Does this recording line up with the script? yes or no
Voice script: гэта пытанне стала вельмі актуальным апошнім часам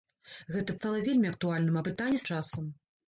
no